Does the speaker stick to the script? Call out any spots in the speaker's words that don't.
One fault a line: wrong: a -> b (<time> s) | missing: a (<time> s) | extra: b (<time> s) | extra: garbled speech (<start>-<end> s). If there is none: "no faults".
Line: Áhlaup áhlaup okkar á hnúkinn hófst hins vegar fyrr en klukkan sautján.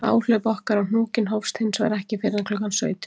missing: áhlaup (0.5 s)
extra: ekki (2.0 s)